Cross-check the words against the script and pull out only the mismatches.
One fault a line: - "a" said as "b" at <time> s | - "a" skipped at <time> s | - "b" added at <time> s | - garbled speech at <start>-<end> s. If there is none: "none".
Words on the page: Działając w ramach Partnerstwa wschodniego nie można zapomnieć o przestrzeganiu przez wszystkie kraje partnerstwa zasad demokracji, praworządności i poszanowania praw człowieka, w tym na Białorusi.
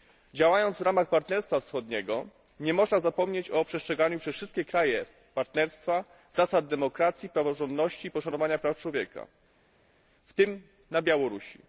none